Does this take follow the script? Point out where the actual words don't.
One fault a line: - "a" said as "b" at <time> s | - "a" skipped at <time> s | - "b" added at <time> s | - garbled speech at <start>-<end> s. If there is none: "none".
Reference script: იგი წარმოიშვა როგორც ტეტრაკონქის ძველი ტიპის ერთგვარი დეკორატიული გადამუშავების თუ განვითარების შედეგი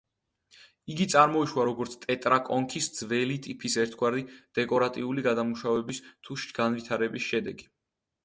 none